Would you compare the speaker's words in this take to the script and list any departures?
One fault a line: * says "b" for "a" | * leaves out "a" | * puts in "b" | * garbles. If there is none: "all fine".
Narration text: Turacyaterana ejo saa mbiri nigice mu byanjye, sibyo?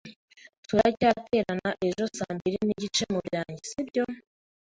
all fine